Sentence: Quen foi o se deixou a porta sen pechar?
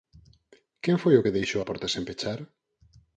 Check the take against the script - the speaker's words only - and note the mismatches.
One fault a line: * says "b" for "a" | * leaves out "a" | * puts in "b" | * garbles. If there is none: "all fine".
* says "que" for "se"